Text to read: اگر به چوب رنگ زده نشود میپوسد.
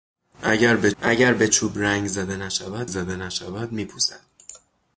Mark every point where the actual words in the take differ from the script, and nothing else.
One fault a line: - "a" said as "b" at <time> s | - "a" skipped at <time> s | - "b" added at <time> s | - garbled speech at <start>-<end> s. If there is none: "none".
- "اگر به" added at 1.0 s
- "زده نشود" added at 2.8 s